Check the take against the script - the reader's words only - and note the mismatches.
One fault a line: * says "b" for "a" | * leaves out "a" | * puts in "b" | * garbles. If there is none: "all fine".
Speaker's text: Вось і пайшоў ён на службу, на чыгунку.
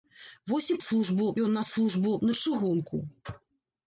* says "службу" for "пайшоў"